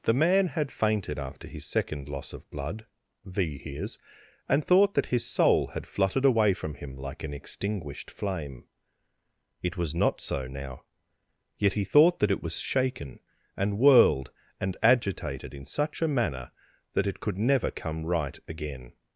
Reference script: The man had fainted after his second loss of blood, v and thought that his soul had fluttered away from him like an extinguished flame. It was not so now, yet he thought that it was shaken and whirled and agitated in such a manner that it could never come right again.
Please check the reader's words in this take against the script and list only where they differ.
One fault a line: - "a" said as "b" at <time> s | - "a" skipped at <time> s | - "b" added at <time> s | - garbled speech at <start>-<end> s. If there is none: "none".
- "hears" added at 3.6 s